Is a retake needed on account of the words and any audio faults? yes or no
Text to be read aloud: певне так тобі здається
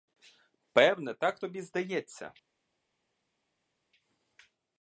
no